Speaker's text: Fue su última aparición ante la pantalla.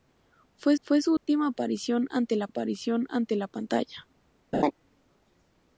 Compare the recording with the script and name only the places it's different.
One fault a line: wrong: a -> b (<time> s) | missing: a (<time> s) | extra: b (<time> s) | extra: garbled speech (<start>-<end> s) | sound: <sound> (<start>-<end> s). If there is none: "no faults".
extra: fue (0.8 s)
sound: dropout (1.2-1.3 s)
extra: aparición ante la (2.5 s)
sound: laugh (4.5-4.7 s)